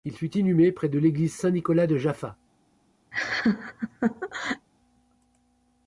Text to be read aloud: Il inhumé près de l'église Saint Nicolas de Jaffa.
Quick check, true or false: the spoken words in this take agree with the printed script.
false